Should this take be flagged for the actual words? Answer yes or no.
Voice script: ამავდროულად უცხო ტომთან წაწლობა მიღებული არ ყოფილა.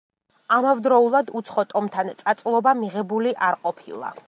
no